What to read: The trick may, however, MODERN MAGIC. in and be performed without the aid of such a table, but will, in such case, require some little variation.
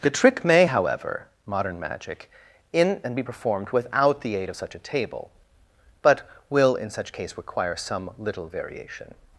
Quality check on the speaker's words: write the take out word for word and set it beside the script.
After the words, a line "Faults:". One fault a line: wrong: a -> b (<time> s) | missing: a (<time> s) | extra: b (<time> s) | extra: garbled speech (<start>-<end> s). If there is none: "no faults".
The trick may, however, MODERN MAGIC. in and be performed without the aid of such a table, but will, in such case, require some little variation.
Faults:
no faults